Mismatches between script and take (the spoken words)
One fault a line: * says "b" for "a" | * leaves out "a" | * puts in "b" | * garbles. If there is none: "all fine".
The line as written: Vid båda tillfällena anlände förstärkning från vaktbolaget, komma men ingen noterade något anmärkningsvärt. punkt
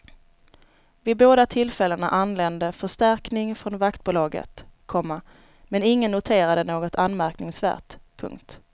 all fine